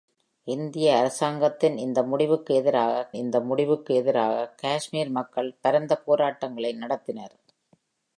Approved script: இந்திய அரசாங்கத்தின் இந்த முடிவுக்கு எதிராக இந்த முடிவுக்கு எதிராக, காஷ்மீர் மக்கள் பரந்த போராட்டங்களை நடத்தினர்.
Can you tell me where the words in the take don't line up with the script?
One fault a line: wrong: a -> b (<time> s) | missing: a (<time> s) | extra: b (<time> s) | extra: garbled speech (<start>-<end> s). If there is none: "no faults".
no faults